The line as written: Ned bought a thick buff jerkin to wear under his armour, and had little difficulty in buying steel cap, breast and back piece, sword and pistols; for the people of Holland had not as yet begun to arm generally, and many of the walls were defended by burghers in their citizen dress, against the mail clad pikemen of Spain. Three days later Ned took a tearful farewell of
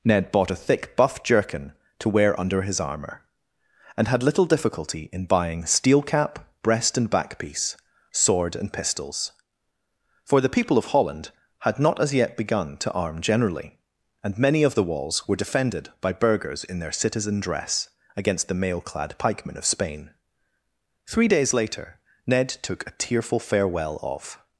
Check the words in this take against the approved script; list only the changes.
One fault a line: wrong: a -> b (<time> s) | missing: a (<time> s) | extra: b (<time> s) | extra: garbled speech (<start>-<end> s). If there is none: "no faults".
no faults